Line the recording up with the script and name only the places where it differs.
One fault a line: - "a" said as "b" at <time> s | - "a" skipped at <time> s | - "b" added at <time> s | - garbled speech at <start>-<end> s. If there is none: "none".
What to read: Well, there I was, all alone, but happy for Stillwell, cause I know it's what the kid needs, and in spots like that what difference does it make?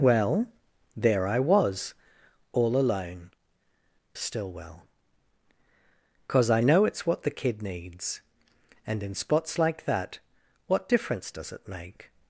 - "but happy for" skipped at 3.3 s